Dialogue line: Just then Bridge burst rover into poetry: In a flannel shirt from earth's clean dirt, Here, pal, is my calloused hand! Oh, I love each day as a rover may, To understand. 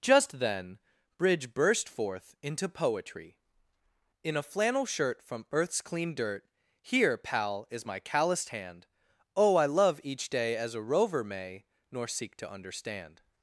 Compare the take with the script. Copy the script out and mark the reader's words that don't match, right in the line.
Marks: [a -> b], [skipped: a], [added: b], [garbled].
Just then Bridge burst [rover -> forth] into poetry: In a flannel shirt from earth's clean dirt, Here, pal, is my calloused hand! Oh, I love each day as a rover may, [added: Nor seek] To understand.